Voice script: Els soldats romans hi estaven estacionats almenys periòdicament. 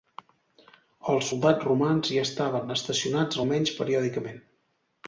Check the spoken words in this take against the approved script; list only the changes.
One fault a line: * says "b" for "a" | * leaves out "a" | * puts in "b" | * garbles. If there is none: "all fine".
all fine